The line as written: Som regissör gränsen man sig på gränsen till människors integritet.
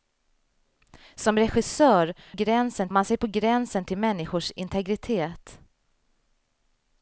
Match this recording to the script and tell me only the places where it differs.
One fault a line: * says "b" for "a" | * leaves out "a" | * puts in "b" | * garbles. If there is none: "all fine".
all fine